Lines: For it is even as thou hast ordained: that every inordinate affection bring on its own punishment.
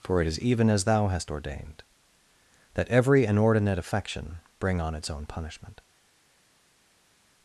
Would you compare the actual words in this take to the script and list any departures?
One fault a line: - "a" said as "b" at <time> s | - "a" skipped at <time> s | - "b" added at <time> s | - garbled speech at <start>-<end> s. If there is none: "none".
none